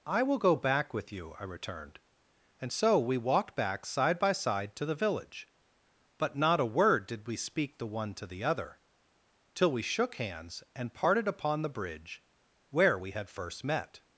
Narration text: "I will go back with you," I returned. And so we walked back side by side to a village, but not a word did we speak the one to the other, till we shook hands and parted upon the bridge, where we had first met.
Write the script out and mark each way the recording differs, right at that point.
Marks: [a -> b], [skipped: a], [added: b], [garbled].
"I will go back with you," I returned. And so we walked back side by side to [a -> the] village, but not a word did we speak the one to the other, till we shook hands and parted upon the bridge, where we had first met.